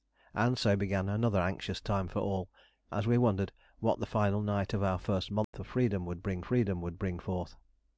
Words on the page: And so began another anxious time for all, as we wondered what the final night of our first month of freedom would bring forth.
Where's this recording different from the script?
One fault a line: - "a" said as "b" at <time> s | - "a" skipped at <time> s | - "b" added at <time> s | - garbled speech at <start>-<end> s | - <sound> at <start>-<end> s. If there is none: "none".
- dropout at 5.4-5.5 s
- "freedom would bring" added at 6.4 s